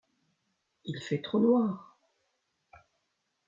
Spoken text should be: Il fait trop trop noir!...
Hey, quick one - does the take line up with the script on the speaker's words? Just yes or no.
no